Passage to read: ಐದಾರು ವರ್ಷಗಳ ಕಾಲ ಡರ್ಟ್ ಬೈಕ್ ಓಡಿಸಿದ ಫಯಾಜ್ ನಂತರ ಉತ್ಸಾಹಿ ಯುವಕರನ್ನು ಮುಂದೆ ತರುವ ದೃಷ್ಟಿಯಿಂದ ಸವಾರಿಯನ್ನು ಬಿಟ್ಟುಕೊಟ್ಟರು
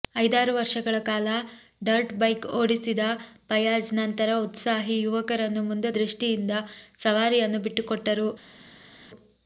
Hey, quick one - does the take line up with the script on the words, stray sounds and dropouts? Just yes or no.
no